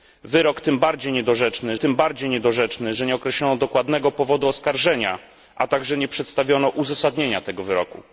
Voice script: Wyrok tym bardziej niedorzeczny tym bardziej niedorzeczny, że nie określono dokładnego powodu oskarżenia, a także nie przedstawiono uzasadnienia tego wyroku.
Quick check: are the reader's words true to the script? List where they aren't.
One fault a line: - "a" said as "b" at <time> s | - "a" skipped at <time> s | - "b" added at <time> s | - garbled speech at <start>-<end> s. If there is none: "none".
none